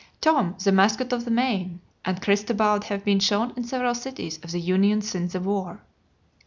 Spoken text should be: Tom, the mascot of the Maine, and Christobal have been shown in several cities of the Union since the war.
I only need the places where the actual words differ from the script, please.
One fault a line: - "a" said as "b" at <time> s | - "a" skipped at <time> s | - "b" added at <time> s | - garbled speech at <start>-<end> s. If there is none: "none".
none